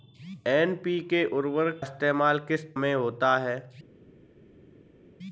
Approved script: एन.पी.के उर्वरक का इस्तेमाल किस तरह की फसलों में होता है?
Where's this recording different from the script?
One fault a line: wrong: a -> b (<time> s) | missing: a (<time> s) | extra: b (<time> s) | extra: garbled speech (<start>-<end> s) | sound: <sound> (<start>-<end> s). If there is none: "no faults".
missing: का (1.8 s)
missing: तरह की फसलों (2.8 s)